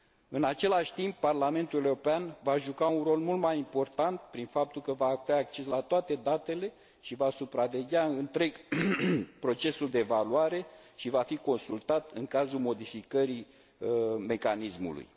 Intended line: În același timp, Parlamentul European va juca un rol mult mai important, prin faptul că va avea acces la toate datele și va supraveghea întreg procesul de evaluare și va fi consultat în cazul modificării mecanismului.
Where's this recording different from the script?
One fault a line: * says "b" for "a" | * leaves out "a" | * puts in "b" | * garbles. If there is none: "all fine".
all fine